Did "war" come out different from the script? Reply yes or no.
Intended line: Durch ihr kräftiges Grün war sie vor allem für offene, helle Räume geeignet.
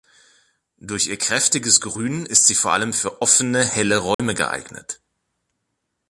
yes